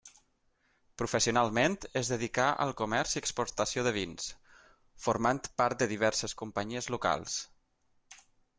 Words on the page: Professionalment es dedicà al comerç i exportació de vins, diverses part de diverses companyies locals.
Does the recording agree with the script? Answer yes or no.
no